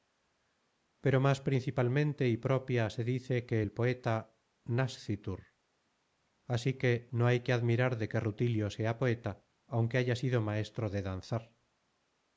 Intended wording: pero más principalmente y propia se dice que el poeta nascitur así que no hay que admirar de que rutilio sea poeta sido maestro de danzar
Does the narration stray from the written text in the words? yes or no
yes